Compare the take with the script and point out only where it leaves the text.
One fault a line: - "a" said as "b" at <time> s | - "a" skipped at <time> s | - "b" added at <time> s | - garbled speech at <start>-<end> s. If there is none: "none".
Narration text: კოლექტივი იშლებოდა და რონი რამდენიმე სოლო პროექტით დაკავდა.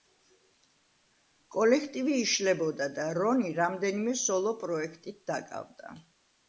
none